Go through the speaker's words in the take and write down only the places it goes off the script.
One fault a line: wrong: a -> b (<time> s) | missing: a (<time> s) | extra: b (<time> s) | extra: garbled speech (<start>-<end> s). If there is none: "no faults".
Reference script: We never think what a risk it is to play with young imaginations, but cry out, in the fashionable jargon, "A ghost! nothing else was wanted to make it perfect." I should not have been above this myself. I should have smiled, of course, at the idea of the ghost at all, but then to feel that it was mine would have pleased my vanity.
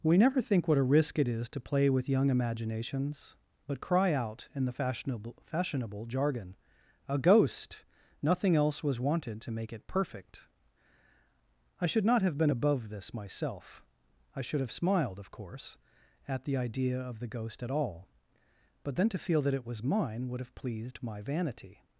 extra: fashionable (5.4 s)